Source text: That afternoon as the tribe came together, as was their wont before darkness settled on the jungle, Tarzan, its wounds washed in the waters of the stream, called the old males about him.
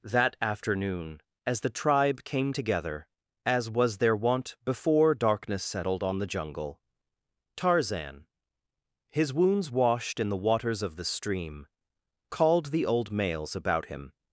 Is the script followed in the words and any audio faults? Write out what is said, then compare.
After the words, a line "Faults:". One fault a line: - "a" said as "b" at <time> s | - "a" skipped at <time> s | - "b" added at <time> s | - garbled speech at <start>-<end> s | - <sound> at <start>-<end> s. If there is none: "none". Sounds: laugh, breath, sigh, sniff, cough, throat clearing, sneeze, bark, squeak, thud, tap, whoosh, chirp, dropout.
That afternoon as the tribe came together, as was their wont before darkness settled on the jungle, Tarzan, his wounds washed in the waters of the stream, called the old males about him.
Faults:
- "its" said as "his" at 9.1 s